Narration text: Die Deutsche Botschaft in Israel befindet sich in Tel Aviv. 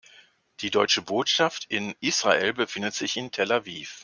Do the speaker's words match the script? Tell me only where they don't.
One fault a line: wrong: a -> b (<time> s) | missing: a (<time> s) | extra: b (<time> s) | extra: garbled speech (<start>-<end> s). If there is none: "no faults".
no faults